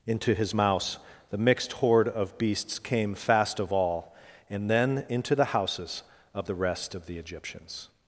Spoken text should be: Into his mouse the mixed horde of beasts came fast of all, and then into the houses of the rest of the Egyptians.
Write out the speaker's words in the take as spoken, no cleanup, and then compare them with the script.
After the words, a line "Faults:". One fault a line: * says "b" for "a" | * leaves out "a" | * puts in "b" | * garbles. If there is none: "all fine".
Into his mouse the mixed horde of beasts came fast of all, and then into the houses of the rest of the Egyptians.
Faults:
all fine